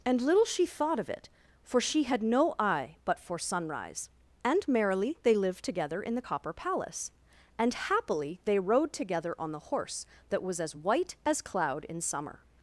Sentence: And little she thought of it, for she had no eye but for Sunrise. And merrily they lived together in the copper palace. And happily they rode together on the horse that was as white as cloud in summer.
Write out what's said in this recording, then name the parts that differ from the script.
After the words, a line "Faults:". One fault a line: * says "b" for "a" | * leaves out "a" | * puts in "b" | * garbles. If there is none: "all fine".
And little she thought of it, for she had no eye but for Sunrise. And merrily they lived together in the copper palace. And happily they rode together on the horse that was as white as cloud in summer.
Faults:
all fine